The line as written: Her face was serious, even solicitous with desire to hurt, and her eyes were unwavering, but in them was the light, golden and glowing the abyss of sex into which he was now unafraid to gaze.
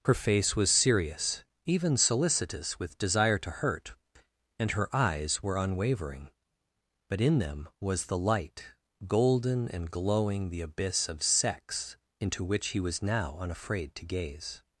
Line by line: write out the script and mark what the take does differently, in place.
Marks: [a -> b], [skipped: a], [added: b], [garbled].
Her face was serious, even solicitous with desire to hurt, and her eyes were unwavering, but in them was the light, golden and glowing the abyss of sex into which he was now unafraid to gaze.